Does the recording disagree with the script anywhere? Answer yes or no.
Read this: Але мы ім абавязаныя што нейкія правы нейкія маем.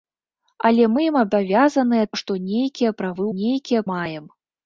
no